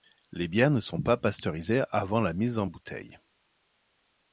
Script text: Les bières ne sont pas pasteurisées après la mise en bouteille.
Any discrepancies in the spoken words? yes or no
yes